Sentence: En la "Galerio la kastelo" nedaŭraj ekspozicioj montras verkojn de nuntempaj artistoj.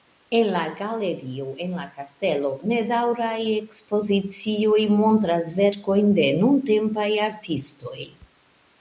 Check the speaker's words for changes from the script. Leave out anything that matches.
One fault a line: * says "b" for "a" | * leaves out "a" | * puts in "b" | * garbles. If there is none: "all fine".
* puts in "en"